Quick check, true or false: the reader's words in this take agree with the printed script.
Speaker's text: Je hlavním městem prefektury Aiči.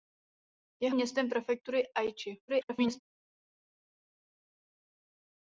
false